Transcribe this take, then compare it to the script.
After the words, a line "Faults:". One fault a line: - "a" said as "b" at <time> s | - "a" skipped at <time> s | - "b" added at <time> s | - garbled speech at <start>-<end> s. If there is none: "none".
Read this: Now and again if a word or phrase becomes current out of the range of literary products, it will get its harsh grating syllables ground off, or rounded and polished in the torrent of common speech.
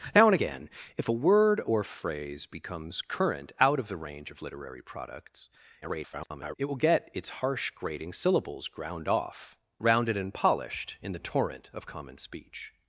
Now and again if a word or phrase becomes current out of the range of literary products, [garbled] it will get its harsh grating syllables ground off, rounded and polished in the torrent of common speech.
Faults:
- garbled speech at 5.8-6.6 s
- "or" skipped at 9.6 s